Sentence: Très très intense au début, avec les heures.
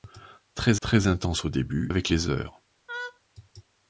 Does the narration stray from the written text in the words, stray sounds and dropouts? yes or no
yes